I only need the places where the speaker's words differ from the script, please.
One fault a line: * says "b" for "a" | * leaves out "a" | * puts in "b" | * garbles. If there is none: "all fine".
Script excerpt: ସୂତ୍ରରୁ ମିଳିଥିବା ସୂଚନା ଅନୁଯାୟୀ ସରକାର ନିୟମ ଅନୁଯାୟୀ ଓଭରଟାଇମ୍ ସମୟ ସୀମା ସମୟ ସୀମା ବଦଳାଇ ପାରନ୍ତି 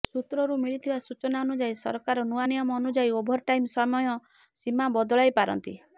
* puts in "ନୂଆ"
* leaves out "ସମୟ ସୀମା"